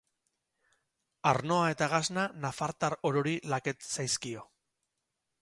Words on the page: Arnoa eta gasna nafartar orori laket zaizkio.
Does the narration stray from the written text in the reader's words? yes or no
no